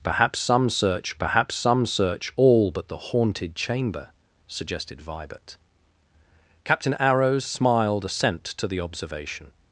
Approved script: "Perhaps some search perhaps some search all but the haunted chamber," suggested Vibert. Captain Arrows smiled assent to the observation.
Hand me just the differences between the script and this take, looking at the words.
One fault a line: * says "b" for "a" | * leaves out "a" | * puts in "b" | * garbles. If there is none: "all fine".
all fine